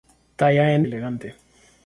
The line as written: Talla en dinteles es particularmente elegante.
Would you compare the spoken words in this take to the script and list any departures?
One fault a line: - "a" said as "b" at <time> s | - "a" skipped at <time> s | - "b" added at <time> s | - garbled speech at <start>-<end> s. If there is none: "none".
- "dinteles es particularmente" skipped at 0.8 s